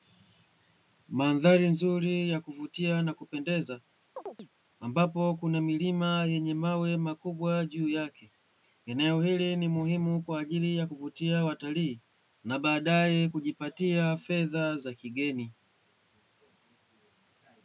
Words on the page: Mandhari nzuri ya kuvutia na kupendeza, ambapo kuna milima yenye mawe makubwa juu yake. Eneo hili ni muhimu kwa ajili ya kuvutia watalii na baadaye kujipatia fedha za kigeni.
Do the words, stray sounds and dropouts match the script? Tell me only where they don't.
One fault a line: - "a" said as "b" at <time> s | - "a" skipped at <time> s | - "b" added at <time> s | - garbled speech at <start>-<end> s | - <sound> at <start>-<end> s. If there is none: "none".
- chirp at 4.2-4.5 s